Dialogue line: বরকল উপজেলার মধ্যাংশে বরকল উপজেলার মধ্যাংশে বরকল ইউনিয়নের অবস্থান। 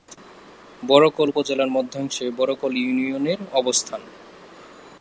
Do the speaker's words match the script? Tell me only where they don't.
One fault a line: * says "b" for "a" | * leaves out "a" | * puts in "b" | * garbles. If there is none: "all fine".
* leaves out "উপজেলার মধ্যাংশে বরকল"